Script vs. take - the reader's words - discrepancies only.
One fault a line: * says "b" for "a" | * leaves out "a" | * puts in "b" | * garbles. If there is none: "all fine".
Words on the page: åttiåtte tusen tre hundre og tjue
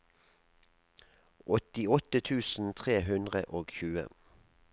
all fine